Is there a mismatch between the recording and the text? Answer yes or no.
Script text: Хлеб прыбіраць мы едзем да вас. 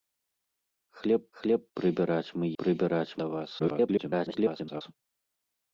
yes